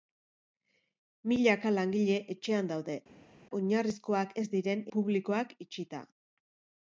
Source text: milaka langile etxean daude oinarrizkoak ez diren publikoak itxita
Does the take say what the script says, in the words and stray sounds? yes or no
yes